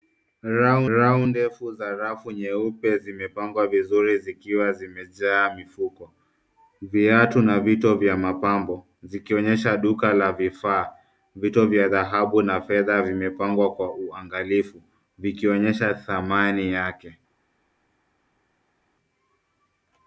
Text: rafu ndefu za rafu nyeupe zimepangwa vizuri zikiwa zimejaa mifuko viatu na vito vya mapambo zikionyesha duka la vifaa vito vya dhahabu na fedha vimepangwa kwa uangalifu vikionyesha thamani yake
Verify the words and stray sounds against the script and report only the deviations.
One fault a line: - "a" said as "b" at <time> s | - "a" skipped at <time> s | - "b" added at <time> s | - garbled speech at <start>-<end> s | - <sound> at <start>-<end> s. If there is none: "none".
- "rafu" added at 1.0 s